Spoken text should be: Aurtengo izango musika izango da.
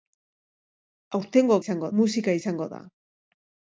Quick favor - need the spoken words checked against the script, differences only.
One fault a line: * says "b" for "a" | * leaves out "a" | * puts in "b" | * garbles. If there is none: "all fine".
all fine